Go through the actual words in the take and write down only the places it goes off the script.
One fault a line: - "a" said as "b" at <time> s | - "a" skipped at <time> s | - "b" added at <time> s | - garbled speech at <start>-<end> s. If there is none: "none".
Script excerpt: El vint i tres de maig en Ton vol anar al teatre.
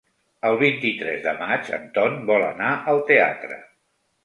none